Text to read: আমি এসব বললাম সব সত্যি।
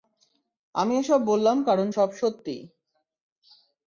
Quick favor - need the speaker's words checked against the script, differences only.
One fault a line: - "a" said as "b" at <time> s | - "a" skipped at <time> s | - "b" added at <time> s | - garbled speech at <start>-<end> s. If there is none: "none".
- "কারণ" added at 1.7 s